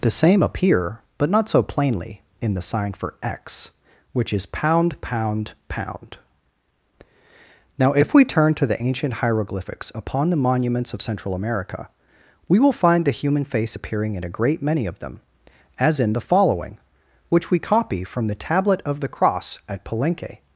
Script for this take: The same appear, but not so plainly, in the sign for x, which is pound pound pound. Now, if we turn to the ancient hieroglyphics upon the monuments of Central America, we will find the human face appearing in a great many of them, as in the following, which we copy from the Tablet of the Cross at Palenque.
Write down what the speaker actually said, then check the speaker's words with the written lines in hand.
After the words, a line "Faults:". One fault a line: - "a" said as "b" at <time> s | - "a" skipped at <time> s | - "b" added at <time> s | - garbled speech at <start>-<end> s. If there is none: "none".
The same appear, but not so plainly, in the sign for x, which is pound pound pound. Now, if we turn to the ancient hieroglyphics upon the monuments of Central America, we will find the human face appearing in a great many of them, as in the following, which we copy from the Tablet of the Cross at Palenque.
Faults:
none